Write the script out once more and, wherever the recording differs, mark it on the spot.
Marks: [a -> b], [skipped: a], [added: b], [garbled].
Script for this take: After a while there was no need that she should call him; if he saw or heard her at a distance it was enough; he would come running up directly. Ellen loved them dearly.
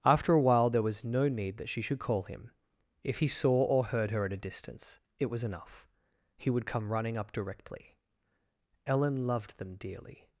After a while there was no need that she should call him; if he saw or heard her at a distance it was enough; he would come running up directly. Ellen loved them dearly.